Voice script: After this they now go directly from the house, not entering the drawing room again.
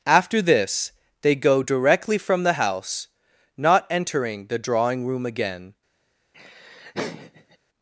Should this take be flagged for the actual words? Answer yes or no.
yes